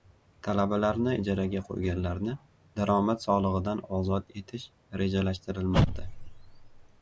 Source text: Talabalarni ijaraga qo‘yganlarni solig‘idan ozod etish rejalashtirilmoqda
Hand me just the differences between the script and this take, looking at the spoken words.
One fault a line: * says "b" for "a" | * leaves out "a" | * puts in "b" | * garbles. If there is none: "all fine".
* puts in "daromad"